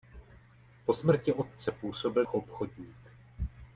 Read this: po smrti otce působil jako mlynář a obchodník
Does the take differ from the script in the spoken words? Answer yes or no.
yes